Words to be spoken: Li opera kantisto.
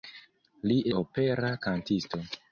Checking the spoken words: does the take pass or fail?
pass